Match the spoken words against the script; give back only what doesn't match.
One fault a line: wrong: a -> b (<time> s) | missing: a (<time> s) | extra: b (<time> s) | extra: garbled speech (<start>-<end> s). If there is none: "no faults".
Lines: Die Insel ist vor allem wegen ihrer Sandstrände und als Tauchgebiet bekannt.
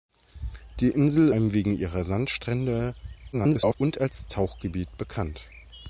missing: ist vor (1.3 s)
extra: garbled speech (3.3-3.7 s)